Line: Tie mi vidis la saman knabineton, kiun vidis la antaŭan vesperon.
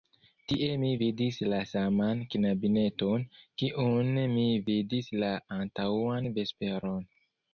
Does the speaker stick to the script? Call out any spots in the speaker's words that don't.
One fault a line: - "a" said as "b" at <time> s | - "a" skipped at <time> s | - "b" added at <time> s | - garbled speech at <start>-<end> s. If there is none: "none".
- "mi" added at 4.4 s